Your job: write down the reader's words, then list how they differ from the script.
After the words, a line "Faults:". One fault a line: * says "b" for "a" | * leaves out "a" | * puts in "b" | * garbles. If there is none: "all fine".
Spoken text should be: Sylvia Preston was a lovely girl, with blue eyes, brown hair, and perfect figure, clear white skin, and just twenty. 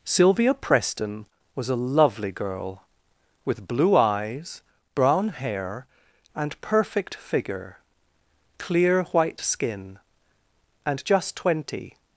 Sylvia Preston was a lovely girl, with blue eyes, brown hair, and perfect figure, clear white skin, and just twenty.
Faults:
all fine